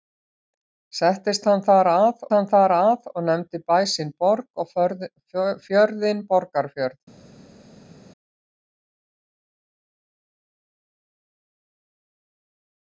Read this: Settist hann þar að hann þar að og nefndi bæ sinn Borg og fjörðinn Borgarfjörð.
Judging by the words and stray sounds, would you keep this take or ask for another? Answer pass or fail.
pass